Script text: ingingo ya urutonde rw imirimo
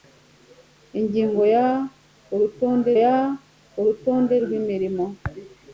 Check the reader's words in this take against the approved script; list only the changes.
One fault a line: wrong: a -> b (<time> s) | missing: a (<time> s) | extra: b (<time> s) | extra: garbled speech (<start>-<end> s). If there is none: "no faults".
extra: ya urutonde (3.0 s)